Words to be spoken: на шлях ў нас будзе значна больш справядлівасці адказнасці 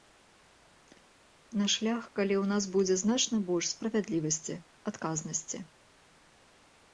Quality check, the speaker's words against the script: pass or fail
fail